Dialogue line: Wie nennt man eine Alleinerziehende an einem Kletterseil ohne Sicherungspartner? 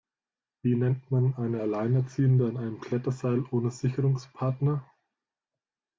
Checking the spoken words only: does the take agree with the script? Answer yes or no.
yes